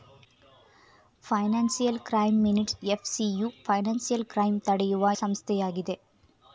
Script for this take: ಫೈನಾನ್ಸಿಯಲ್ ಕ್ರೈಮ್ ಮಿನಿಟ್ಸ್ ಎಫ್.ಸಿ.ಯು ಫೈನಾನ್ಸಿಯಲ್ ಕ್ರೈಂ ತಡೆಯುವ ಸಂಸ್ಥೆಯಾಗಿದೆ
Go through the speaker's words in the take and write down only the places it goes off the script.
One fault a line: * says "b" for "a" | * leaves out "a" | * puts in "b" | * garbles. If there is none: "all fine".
all fine